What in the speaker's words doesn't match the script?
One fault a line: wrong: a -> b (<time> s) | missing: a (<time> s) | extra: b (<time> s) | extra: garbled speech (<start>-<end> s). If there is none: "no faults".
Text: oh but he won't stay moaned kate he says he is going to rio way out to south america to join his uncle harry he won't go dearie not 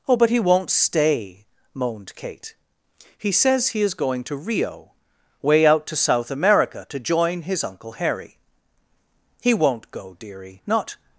no faults